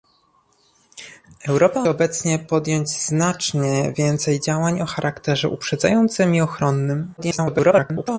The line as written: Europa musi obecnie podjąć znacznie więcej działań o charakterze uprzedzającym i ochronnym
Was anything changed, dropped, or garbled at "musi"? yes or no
yes